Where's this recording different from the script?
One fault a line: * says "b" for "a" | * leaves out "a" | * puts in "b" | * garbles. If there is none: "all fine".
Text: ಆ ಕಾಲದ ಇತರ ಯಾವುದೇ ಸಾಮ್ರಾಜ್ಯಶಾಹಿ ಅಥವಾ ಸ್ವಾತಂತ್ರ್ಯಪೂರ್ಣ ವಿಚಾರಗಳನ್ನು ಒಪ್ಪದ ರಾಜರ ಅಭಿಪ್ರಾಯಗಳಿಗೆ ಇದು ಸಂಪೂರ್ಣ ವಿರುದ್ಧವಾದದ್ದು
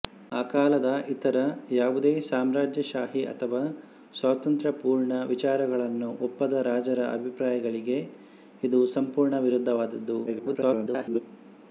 * garbles